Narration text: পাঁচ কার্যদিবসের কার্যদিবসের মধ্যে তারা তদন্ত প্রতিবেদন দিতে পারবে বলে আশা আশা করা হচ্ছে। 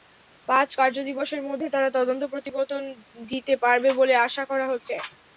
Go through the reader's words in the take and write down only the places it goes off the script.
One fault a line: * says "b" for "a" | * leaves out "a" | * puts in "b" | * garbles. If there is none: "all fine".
* leaves out "কার্যদিবসের"
* leaves out "আশা"